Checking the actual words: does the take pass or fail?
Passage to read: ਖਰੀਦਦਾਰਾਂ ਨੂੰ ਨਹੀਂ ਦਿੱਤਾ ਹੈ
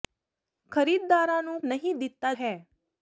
pass